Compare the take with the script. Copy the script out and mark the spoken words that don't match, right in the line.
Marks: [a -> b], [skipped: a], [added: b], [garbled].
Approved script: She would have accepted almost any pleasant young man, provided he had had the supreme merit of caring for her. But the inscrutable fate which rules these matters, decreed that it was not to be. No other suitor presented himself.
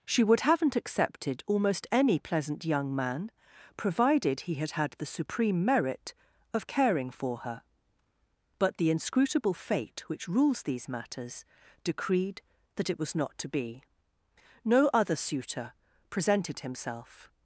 She would [have -> haven't] accepted almost any pleasant young man, provided he had had the supreme merit of caring for her. But the inscrutable fate which rules these matters, decreed that it was not to be. No other suitor presented himself.